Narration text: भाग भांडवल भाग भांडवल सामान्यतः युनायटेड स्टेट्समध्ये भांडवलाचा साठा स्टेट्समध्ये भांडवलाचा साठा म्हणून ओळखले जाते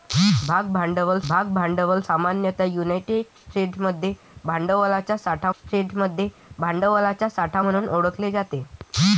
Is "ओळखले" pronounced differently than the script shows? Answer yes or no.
no